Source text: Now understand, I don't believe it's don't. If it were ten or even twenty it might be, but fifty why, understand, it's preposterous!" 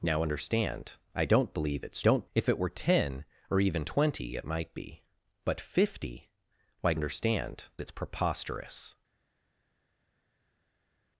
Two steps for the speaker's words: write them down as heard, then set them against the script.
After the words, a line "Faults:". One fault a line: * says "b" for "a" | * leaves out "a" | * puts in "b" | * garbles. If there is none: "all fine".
Now understand, I don't believe it's don't. If it were ten or even twenty it might be, but fifty why, understand, it's preposterous!"
Faults:
all fine